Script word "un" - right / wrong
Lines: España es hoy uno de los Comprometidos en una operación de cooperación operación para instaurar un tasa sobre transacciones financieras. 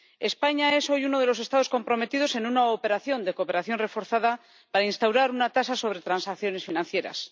wrong